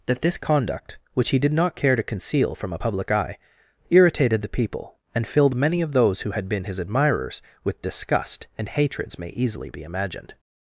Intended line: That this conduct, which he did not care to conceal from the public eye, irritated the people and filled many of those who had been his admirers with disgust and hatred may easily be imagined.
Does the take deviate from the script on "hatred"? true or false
true